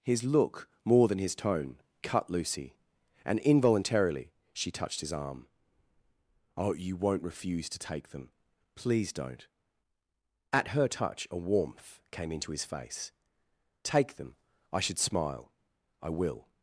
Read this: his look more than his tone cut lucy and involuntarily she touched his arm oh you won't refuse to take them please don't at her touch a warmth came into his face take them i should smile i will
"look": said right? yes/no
yes